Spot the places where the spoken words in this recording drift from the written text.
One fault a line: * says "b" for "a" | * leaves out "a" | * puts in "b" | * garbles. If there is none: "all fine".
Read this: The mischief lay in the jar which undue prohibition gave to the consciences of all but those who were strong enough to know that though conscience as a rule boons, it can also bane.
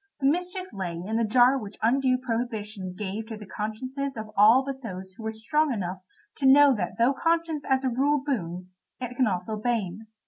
all fine